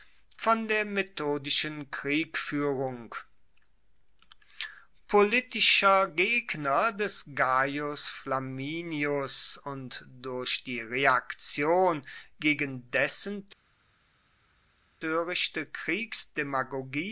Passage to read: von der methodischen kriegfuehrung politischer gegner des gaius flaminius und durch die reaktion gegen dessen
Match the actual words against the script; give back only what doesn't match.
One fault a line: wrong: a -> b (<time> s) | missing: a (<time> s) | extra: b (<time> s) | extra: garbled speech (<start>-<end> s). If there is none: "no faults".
no faults